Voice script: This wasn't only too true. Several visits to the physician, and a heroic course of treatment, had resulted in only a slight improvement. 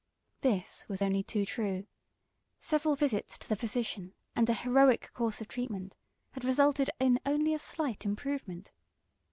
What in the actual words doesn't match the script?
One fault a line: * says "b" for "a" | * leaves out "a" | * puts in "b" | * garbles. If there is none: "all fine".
* says "was" for "wasn't"